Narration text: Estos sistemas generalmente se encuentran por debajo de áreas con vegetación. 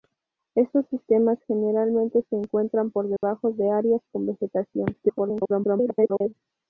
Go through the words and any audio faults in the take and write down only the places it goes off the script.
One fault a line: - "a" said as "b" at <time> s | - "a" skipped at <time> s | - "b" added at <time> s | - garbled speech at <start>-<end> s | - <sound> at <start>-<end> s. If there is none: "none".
- dropout at 3.2-3.2 s
- garbled speech at 4.9-6.3 s